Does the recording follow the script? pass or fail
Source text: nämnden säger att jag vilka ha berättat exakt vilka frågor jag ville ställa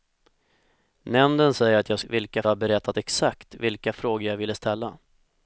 pass